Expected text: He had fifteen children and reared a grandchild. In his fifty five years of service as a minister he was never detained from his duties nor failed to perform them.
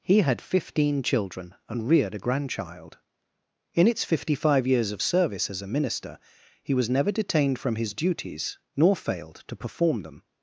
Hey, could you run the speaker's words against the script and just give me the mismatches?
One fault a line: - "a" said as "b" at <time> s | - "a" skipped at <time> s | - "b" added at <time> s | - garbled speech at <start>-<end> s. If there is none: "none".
- "his" said as "its" at 3.9 s